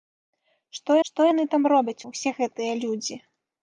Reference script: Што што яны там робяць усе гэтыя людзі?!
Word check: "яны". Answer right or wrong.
right